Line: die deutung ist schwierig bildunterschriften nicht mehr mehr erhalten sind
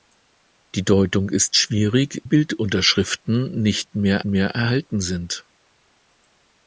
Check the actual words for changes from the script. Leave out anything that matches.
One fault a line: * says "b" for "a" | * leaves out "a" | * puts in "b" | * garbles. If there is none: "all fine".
all fine